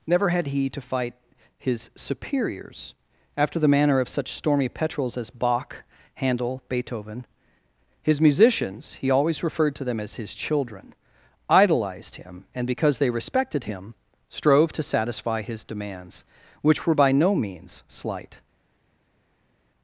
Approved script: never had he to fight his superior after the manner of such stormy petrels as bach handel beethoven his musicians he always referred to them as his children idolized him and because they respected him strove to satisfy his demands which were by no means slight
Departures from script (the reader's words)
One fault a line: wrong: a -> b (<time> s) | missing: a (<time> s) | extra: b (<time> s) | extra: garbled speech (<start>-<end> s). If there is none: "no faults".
wrong: superior -> superiors (1.9 s)